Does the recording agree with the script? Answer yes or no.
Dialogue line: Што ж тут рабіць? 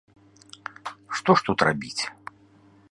yes